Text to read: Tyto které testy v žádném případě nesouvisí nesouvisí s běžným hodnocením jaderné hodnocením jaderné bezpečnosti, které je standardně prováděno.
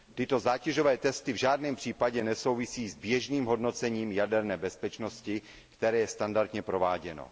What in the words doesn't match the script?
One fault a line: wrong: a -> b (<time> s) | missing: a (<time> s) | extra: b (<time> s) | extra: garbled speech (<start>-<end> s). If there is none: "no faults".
wrong: které -> zátěžové (0.4 s)
missing: nesouvisí (2.9 s)
missing: hodnocením jaderné (4.6 s)